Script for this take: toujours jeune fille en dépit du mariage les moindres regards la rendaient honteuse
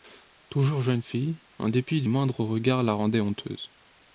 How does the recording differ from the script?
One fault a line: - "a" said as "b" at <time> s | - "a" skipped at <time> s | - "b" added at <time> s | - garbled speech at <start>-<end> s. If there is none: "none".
- "mariage les" skipped at 2.1 s